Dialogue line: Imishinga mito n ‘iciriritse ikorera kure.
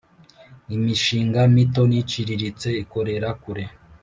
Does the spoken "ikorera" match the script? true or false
true